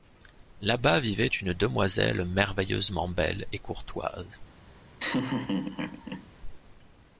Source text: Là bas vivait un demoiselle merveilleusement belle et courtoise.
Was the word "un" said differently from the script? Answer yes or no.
yes